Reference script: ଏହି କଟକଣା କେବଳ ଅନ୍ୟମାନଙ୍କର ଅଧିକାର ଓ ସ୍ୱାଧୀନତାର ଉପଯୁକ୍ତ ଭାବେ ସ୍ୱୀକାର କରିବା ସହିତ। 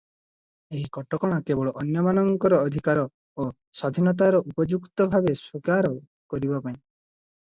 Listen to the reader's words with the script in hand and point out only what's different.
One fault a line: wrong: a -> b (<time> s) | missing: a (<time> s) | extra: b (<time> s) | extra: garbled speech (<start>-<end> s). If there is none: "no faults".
wrong: ସହିତ -> ପାଇଁ (6.6 s)